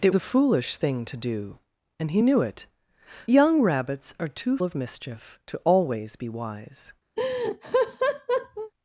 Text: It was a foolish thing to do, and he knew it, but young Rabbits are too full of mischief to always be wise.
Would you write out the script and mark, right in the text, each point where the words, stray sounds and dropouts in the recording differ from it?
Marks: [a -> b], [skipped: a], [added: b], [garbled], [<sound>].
It [skipped: was] a foolish thing to do, and he knew it, [skipped: but] young Rabbits are too [skipped: full] of mischief to always be wise. [laugh]